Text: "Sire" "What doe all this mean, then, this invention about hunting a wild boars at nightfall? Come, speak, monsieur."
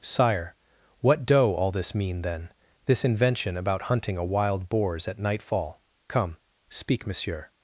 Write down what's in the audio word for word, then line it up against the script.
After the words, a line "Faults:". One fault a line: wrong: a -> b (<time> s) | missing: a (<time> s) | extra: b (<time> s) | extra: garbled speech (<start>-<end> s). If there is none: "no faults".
"Sire" "What doe all this mean, then, this invention about hunting a wild boars at nightfall? Come, speak, monsieur."
Faults:
no faults